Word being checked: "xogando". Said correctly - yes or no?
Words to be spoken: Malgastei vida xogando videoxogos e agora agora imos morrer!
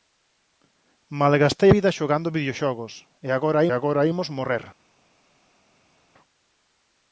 yes